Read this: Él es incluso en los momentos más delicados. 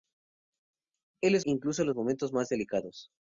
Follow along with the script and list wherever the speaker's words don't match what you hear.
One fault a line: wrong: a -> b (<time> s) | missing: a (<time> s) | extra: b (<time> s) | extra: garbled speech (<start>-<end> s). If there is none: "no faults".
no faults